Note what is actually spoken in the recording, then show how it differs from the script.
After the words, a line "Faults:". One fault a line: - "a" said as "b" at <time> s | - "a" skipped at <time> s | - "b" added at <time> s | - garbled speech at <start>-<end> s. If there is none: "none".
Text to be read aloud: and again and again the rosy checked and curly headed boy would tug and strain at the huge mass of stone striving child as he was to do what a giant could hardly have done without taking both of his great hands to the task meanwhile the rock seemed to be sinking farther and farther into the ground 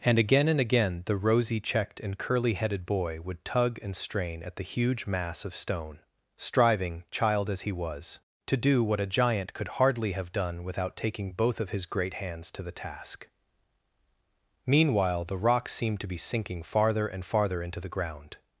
and again and again the rosy checked and curly headed boy would tug and strain at the huge mass of stone striving child as he was to do what a giant could hardly have done without taking both of his great hands to the task meanwhile the rock seemed to be sinking farther and farther into the ground
Faults:
none